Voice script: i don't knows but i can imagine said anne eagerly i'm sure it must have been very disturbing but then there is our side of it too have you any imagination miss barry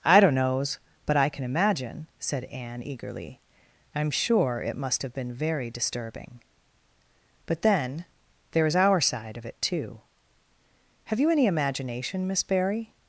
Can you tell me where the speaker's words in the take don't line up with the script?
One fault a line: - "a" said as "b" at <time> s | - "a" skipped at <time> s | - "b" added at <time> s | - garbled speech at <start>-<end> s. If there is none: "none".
none